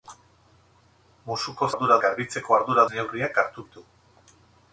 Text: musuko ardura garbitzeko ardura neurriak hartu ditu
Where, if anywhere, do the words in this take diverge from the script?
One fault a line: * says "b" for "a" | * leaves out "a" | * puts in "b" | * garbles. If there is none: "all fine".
all fine